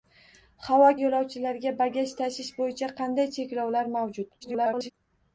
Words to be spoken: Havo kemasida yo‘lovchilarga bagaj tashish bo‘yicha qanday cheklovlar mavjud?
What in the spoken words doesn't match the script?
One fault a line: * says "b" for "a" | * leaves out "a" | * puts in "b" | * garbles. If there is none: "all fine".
* leaves out "kemasida"
* garbles